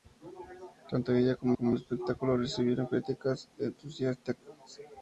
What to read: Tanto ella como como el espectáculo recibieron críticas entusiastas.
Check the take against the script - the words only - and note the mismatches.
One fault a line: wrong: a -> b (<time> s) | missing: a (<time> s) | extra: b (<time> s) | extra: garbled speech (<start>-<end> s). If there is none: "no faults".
no faults